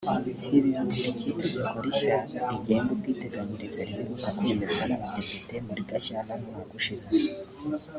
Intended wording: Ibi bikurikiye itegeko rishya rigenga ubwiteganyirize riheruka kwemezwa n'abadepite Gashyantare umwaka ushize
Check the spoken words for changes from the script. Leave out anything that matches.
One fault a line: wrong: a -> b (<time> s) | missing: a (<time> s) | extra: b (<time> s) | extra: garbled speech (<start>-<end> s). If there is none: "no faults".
extra: muri (5.7 s)